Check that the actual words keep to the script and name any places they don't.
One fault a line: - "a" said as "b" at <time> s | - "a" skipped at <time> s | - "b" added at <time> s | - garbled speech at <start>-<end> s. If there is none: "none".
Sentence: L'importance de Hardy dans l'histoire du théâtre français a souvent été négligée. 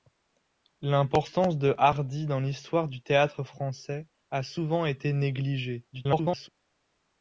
- garbled speech at 5.9-6.5 s